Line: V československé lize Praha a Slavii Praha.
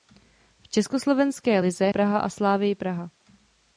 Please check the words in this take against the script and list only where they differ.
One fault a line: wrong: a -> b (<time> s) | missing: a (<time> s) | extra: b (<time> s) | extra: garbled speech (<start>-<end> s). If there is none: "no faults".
no faults